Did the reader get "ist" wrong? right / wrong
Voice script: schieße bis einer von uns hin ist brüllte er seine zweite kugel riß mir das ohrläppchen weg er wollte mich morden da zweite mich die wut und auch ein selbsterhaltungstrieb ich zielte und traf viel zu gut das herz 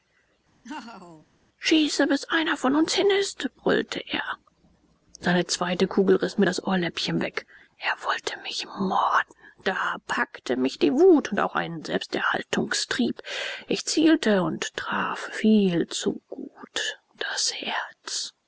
right